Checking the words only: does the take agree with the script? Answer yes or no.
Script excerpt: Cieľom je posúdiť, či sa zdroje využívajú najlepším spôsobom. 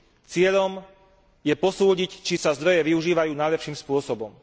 yes